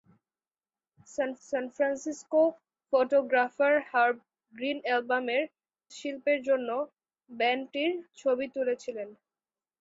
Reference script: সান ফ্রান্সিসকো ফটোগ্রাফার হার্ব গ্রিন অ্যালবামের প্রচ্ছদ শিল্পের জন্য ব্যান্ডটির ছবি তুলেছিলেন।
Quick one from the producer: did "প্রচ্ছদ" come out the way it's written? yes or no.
no